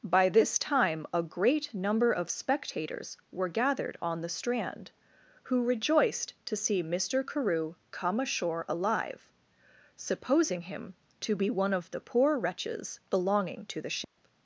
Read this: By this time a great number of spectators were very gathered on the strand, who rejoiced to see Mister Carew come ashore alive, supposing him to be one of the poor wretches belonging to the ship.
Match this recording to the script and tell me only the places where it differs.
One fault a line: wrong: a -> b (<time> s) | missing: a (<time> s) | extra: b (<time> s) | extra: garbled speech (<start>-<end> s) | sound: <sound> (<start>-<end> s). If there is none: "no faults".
missing: very (3.5 s)
sound: dropout (14.0-14.2 s)